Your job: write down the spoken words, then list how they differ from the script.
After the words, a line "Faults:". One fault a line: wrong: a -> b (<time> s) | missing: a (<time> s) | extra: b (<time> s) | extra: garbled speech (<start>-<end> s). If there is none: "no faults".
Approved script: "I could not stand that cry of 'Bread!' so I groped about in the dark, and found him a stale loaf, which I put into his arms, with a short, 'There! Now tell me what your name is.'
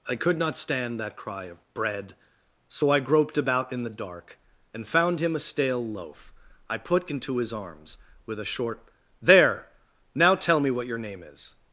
"I could not stand that cry of 'Bread!' so I groped about in the dark, and found him a stale loaf, I put into his arms, with a short, 'There! Now tell me what your name is.'
Faults:
missing: which (6.3 s)